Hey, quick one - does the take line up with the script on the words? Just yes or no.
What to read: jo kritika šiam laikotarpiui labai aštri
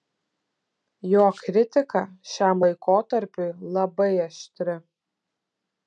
yes